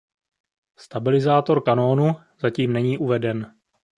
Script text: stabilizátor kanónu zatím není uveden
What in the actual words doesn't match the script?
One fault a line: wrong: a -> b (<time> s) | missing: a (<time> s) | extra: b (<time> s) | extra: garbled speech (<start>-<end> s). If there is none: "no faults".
no faults